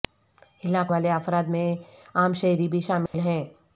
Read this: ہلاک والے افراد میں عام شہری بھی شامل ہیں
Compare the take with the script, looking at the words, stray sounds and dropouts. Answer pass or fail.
fail